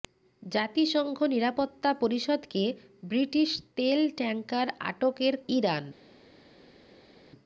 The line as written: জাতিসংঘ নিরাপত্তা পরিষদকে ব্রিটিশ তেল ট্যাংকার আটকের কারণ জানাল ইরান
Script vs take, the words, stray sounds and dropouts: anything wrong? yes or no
yes